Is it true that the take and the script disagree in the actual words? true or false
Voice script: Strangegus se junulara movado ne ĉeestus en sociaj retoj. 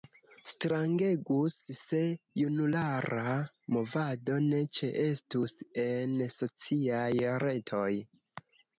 false